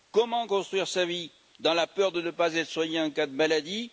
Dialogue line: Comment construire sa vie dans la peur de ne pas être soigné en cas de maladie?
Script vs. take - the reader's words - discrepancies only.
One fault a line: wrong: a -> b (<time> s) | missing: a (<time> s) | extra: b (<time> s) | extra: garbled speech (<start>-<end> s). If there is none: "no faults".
no faults